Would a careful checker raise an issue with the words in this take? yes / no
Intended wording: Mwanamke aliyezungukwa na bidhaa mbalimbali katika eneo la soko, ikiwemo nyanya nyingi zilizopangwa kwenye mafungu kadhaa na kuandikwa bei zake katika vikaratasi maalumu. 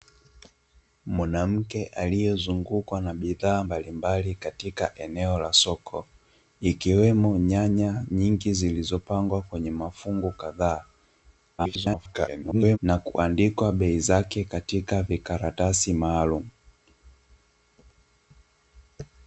yes